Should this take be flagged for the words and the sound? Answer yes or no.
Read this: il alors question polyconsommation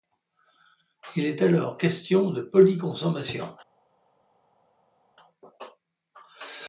yes